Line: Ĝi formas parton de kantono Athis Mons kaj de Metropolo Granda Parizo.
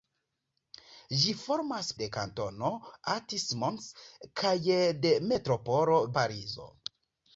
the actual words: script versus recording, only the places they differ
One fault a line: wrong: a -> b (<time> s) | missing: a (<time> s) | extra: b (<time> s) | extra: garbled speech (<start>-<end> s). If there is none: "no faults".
missing: parton (1.9 s)
missing: Granda (6.0 s)